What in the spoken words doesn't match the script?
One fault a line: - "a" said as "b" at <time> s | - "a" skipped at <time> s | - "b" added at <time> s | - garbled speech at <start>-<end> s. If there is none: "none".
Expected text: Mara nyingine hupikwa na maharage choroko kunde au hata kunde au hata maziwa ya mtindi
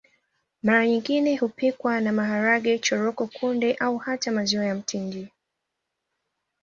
- "kunde au hata" skipped at 4.3 s